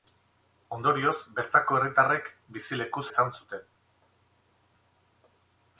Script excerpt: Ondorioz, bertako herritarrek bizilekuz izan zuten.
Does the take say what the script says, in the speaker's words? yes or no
yes